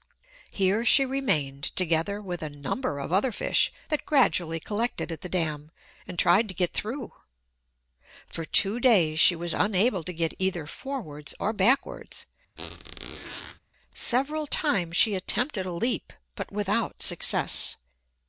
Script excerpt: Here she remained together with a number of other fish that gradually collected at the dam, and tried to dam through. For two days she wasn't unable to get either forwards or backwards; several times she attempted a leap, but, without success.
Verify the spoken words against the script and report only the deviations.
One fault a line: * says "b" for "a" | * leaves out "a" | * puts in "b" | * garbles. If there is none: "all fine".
* says "get" for "dam"
* says "was" for "wasn't"